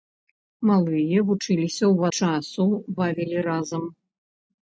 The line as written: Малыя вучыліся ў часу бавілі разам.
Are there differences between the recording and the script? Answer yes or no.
no